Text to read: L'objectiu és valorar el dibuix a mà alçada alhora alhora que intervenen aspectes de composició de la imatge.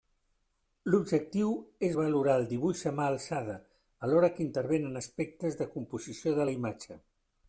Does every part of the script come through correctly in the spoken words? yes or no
no